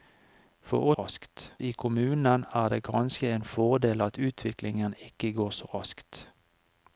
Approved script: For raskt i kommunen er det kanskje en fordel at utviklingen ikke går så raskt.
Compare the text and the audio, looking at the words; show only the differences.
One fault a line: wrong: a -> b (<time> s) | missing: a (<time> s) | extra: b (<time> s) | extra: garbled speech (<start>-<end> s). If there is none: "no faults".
no faults